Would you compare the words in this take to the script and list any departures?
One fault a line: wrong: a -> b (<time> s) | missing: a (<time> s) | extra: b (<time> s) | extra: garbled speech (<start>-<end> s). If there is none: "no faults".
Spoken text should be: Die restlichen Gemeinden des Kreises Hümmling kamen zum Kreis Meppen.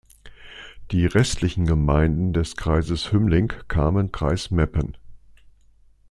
missing: zum (4.2 s)